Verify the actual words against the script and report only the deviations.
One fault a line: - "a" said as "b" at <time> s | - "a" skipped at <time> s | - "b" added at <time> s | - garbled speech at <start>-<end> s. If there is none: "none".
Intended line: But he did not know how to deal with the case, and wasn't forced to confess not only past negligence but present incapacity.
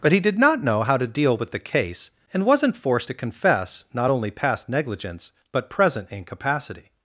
none